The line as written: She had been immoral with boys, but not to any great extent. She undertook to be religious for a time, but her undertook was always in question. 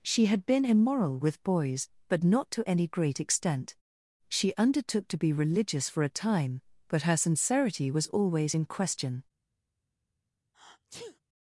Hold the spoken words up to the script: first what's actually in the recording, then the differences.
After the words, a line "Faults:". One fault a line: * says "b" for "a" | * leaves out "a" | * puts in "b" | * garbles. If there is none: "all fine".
She had been immoral with boys, but not to any great extent. She undertook to be religious for a time, but her sincerity was always in question.
Faults:
* says "sincerity" for "undertook"